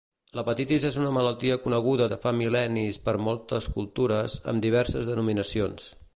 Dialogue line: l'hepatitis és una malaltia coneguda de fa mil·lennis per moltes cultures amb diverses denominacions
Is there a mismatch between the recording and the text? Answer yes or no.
no